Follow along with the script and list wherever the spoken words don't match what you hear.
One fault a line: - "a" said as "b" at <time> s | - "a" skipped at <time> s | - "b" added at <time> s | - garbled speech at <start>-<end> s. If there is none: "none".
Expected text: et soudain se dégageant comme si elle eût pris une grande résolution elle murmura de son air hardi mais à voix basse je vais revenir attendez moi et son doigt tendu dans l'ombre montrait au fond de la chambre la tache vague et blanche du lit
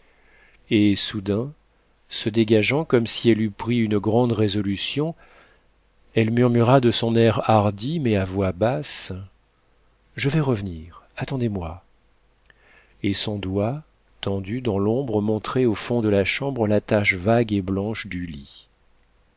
none